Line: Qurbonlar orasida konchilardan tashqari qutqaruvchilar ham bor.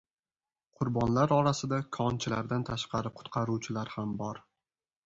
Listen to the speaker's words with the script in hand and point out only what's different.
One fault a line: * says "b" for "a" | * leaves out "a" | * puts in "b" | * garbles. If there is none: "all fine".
all fine